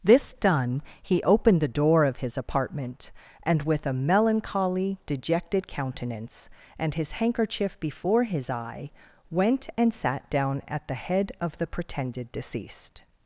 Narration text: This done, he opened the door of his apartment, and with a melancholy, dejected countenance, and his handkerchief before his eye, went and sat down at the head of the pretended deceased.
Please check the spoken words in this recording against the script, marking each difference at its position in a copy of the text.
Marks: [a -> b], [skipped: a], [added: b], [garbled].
This done, he opened the door of his apartment, and with a melancholy, dejected countenance, and his handkerchief before his eye, went and sat down at the head of the pretended deceased.